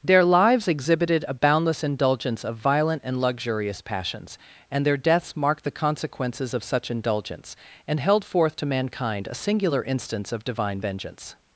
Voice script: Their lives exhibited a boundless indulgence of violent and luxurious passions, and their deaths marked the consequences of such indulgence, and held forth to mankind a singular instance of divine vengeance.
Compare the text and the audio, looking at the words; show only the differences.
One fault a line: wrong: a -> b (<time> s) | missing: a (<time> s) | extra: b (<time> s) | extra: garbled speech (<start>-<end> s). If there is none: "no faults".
no faults